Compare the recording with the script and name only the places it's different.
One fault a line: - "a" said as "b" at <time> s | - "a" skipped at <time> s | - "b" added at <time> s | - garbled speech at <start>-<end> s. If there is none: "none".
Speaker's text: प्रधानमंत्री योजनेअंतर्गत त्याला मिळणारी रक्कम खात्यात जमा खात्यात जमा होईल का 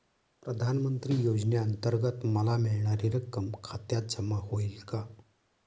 - "त्याला" said as "मला" at 2.2 s
- "खात्यात जमा" skipped at 4.4 s